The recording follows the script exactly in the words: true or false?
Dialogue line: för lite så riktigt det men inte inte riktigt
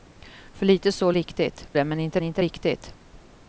true